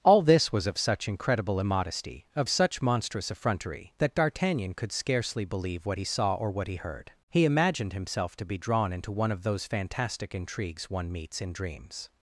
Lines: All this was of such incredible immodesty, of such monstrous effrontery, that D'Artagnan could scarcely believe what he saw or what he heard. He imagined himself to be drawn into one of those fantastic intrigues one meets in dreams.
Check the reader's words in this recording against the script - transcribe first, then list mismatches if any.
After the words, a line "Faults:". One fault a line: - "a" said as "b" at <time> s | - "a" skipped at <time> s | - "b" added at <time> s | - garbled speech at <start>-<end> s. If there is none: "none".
All this was of such incredible immodesty, of such monstrous effrontery, that D'Artagnan could scarcely believe what he saw or what he heard. He imagined himself to be drawn into one of those fantastic intrigues one meets in dreams.
Faults:
none